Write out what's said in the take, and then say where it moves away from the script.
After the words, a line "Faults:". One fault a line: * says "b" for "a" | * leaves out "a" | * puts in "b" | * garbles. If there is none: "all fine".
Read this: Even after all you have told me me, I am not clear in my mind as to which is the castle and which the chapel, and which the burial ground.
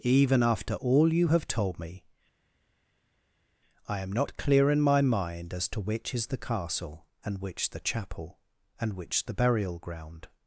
Even after all you have told me, I am not clear in my mind as to which is the castle and which the chapel, and which the burial ground.
Faults:
* leaves out "me"